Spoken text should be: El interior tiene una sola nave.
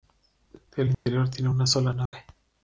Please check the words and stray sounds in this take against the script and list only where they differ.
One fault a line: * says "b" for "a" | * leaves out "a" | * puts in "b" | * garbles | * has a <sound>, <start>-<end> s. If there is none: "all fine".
* has a dropout, 0.9-1.1 s
* has a dropout, 2.1-2.1 s